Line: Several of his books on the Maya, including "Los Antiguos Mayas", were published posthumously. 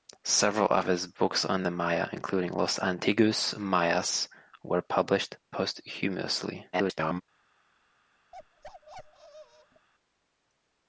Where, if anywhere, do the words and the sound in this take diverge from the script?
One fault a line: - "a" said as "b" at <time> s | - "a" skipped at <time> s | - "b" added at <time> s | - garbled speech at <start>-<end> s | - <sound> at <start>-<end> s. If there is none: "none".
- garbled speech at 6.7-7.2 s
- bark at 8.3-9.9 s